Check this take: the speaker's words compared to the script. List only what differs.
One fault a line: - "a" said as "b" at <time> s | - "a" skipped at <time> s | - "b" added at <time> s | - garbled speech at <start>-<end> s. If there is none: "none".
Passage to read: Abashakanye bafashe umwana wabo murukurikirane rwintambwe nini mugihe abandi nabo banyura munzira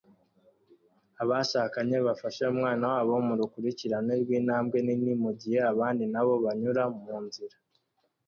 none